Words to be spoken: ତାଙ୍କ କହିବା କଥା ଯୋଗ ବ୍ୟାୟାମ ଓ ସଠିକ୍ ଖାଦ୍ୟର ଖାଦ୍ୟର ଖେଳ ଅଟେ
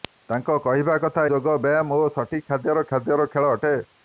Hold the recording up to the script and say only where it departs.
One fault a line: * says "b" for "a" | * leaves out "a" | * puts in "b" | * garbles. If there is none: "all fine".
all fine